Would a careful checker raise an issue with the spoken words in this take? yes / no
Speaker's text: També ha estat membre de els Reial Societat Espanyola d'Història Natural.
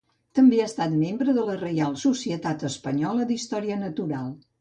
yes